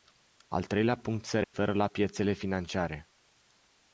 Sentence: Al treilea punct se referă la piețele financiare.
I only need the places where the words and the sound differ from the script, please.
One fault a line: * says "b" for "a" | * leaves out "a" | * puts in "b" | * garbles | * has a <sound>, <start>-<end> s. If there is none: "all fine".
* has a dropout, 1.4-1.5 s